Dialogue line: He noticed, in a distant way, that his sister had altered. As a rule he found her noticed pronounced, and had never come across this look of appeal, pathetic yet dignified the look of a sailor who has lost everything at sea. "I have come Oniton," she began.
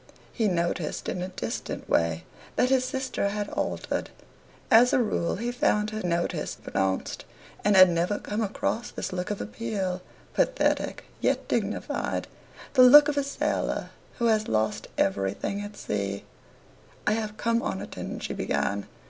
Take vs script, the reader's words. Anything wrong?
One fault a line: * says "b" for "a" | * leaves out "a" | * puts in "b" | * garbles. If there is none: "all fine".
all fine